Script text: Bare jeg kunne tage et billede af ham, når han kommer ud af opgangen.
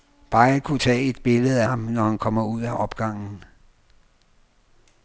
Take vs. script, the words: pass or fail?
fail